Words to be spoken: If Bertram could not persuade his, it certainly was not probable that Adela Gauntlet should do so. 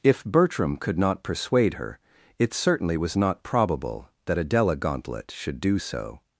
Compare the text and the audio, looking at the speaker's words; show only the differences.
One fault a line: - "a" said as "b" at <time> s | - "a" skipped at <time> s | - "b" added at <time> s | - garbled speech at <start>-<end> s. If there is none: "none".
- "his" said as "her" at 1.8 s